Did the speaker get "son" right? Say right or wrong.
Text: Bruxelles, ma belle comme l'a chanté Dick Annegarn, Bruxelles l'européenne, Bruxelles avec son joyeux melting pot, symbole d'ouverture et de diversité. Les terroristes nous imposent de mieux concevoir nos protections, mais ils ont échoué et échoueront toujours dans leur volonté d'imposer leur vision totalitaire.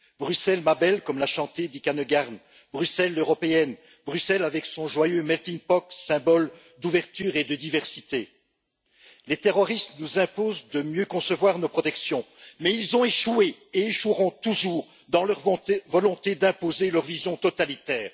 right